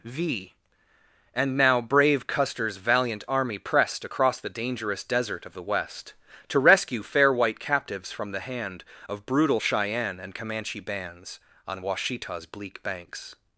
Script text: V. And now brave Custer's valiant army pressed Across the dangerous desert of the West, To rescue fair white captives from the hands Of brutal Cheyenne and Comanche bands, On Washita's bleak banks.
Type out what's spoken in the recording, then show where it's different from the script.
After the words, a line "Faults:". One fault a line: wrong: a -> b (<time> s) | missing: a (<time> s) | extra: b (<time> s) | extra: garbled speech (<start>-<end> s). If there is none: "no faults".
V. And now brave Custer's valiant army pressed Across the dangerous desert of the West, To rescue fair white captives from the hand Of brutal Cheyenne and Comanche bands, On Washita's bleak banks.
Faults:
wrong: hands -> hand (8.4 s)